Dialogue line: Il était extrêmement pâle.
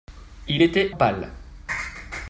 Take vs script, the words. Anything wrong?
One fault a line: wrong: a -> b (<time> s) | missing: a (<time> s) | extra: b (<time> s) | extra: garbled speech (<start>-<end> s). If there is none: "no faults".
missing: extrêmement (0.9 s)